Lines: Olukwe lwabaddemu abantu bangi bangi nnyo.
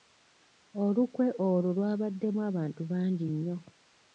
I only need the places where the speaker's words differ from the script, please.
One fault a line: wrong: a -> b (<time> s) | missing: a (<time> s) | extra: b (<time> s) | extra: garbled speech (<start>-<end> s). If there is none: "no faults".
extra: olwo (1.5 s)
missing: bangi (3.3 s)